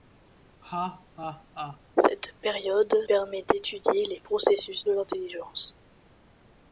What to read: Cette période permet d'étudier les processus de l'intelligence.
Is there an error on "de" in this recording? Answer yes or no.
no